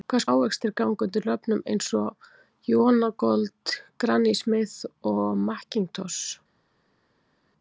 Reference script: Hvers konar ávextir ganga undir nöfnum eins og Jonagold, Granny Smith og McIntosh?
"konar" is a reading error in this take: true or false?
true